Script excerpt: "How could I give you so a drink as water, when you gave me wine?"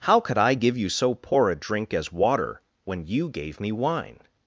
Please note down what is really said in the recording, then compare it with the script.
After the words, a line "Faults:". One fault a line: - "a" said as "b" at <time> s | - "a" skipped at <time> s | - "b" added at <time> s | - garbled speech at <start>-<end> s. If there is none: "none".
"How could I give you so poor a drink as water, when you gave me wine?"
Faults:
- "poor" added at 1.1 s